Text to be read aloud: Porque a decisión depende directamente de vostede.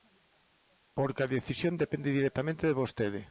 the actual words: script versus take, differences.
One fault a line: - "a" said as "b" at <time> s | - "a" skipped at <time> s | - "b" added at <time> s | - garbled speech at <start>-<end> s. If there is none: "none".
none